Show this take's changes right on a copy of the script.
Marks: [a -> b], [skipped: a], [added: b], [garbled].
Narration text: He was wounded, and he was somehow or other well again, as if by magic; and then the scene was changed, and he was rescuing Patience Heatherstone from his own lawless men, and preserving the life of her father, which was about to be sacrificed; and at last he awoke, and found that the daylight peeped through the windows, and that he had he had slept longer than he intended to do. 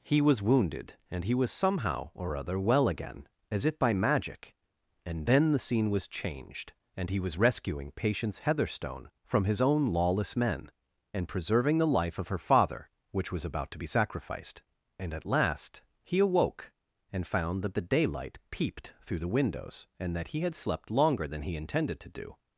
He was wounded, and he was somehow or other well again, as if by magic; and then the scene was changed, and he was rescuing Patience Heatherstone from his own lawless men, and preserving the life of her father, which was about to be sacrificed; and at last he awoke, and found that the daylight peeped through the windows, and that he had [skipped: he had] slept longer than he intended to do.